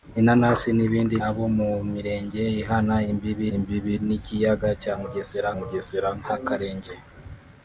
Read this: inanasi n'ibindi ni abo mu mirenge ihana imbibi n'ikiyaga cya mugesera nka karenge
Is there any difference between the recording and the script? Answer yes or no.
yes